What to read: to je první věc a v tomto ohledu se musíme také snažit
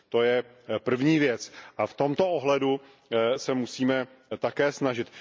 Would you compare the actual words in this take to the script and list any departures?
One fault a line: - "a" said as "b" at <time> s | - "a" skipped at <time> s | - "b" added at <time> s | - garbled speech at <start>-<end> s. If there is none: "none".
none